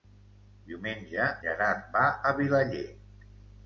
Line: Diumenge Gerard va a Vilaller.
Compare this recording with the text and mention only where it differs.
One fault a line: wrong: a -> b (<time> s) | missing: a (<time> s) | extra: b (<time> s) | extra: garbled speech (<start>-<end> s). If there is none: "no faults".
no faults